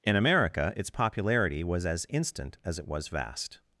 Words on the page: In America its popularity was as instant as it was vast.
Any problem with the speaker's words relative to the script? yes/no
no